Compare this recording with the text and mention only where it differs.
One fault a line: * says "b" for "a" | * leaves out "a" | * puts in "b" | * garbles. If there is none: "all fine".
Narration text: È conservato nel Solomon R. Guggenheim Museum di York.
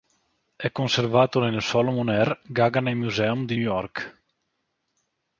all fine